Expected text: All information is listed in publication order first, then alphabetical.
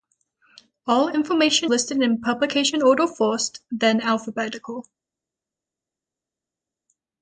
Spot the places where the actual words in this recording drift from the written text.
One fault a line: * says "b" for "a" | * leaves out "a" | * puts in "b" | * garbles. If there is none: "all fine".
* leaves out "is"